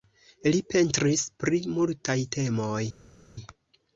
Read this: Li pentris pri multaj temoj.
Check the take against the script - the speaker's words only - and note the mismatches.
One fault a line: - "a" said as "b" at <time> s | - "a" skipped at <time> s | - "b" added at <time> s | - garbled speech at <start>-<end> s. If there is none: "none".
none